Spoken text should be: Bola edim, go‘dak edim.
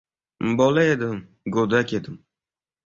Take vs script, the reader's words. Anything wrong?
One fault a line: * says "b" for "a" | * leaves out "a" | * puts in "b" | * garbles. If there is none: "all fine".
all fine